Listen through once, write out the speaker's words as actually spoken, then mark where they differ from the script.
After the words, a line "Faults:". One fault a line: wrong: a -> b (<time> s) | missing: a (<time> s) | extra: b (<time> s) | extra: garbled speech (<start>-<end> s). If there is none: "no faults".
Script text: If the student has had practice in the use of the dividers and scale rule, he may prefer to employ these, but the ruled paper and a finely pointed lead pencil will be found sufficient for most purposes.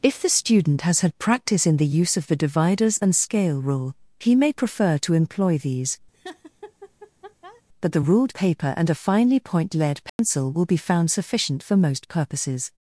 If the student has had practice in the use of the dividers and scale rule, he may prefer to employ these, but the ruled paper and a finely point lead pencil will be found sufficient for most purposes.
Faults:
wrong: pointed -> point (9.4 s)